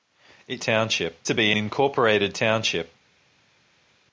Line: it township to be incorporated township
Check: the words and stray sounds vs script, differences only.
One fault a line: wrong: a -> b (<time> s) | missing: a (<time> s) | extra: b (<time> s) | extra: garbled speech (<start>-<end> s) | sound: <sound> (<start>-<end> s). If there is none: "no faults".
no faults